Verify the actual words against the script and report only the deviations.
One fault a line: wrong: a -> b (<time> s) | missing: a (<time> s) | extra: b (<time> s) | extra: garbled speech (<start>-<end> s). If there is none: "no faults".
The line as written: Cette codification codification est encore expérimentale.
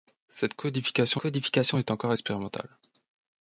no faults